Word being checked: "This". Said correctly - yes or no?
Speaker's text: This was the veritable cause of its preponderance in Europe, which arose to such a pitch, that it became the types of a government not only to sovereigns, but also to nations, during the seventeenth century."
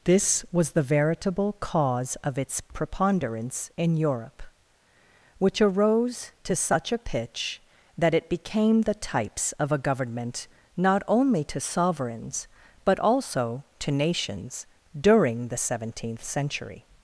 yes